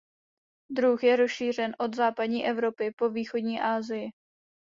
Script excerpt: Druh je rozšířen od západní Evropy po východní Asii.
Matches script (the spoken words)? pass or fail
pass